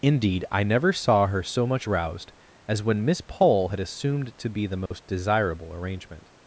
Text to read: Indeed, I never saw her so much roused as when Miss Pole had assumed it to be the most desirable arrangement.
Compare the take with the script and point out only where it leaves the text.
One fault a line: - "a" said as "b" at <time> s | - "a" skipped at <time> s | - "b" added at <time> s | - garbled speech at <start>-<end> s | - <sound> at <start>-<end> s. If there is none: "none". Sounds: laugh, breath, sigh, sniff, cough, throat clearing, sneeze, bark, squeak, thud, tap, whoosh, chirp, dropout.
- "it" skipped at 4.4 s
- dropout at 4.9-4.9 s